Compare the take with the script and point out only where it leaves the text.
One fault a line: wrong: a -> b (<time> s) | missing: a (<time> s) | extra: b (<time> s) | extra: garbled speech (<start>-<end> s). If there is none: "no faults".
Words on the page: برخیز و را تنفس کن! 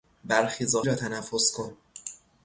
no faults